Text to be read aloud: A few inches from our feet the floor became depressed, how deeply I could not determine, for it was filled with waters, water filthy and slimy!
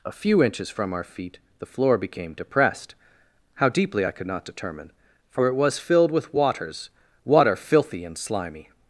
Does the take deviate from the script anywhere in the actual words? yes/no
no